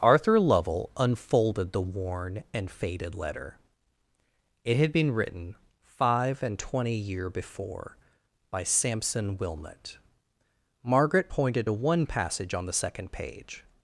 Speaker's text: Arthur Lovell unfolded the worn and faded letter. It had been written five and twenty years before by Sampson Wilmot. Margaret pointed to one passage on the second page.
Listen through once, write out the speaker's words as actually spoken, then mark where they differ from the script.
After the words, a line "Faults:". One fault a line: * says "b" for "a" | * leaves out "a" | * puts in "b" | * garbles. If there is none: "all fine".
Arthur Lovell unfolded the worn and faded letter. It had been written five and twenty year before by Sampson Wilmot. Margaret pointed to one passage on the second page.
Faults:
* says "year" for "years"